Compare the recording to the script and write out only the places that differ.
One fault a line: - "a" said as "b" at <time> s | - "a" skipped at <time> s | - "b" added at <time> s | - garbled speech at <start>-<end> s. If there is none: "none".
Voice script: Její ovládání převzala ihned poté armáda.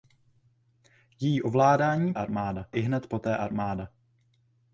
- "převzala" said as "armáda" at 2.1 s